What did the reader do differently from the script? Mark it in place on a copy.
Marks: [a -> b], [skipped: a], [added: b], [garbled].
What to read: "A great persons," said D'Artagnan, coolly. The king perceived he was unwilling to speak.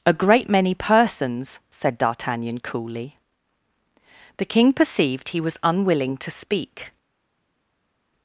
"A great [added: many] persons," said D'Artagnan, coolly. The king perceived he was unwilling to speak.